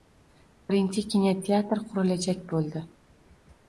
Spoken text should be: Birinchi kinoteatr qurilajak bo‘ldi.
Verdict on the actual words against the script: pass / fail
pass